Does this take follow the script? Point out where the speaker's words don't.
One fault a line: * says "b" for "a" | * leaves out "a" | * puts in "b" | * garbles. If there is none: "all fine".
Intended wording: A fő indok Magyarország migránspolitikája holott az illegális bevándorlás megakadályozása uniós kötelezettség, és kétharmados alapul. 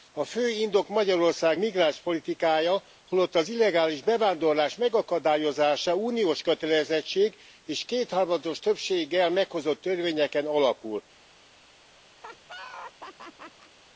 * puts in "többséggel meghozott törvényeken"